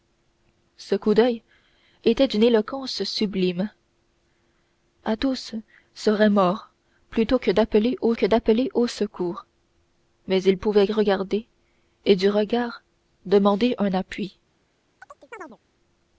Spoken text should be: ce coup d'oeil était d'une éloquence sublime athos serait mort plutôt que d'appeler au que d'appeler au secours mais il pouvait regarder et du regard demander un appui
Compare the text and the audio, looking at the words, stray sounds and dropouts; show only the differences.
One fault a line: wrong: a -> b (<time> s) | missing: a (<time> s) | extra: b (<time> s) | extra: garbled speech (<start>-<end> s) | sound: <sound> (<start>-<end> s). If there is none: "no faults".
sound: chirp (15.0-15.6 s)